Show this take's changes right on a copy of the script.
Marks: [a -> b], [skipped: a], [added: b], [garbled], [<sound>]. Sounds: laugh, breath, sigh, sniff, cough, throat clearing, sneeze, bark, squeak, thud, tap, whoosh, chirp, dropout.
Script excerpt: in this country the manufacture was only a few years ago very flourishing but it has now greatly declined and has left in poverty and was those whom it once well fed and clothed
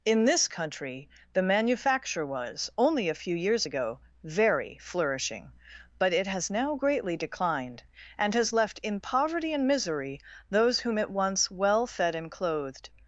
in this country the manufacture was only a few years ago very flourishing but it has now greatly declined and has left in poverty and [was -> misery] those whom it once well fed and clothed